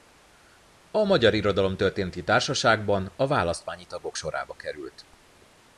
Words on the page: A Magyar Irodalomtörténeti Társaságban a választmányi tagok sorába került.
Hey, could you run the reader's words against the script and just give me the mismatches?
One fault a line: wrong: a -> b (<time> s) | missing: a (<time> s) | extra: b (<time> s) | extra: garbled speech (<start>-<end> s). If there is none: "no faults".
no faults